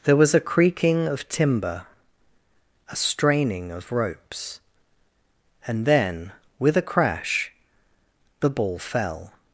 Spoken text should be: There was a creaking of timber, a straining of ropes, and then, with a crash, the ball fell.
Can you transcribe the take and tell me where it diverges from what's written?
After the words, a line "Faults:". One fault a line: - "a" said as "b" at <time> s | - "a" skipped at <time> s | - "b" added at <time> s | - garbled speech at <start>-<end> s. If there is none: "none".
There was a creaking of timber, a straining of ropes, and then, with a crash, the ball fell.
Faults:
none